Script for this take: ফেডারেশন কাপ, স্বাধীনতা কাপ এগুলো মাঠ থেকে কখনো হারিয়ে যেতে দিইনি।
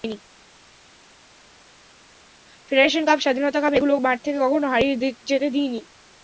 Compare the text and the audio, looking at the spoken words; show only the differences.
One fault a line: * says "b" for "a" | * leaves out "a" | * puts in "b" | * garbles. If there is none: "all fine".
all fine